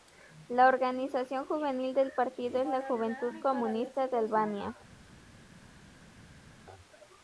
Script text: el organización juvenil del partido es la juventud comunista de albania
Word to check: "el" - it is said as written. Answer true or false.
false